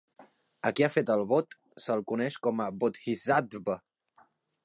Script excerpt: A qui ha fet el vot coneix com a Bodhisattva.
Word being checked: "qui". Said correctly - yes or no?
yes